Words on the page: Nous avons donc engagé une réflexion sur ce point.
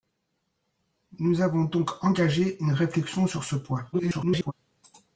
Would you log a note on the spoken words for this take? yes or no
yes